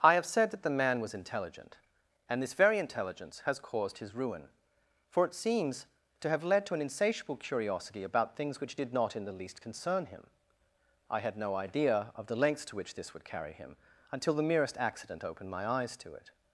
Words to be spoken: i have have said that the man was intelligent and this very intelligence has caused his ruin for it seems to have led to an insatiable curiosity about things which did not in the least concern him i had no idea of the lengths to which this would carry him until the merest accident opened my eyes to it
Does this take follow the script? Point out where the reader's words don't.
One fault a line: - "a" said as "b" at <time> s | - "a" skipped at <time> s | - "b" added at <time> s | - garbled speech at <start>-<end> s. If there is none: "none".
- "have" skipped at 0.2 s